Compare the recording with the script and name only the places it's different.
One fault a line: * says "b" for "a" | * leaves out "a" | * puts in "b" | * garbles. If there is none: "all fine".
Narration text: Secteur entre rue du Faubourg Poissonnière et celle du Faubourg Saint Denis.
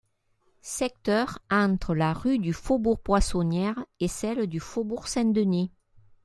* puts in "la"